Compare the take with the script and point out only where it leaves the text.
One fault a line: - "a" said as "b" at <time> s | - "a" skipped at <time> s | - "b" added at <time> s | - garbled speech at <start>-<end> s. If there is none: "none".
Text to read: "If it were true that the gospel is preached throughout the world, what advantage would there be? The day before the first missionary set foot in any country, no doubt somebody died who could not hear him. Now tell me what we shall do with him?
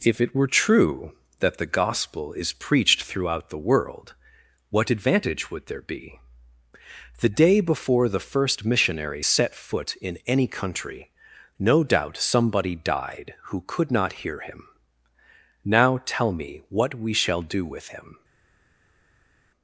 none